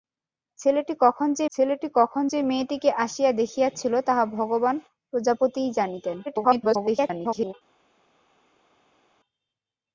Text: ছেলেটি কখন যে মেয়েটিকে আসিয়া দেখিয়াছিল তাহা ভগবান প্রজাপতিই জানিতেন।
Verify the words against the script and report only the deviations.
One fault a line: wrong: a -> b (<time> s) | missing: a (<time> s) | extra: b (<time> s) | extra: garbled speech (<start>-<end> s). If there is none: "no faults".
extra: ছেলেটি কখন যে (1.5 s)
extra: garbled speech (6.3-7.5 s)